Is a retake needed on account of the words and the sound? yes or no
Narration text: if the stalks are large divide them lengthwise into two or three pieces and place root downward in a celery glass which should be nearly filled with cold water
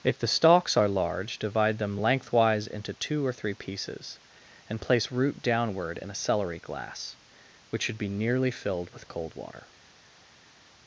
no